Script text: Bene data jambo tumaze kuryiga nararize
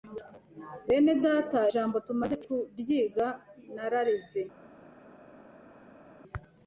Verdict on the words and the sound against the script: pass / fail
pass